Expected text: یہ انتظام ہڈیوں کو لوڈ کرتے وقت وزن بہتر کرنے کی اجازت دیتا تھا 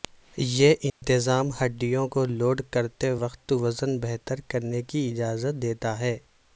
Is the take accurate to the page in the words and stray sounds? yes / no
no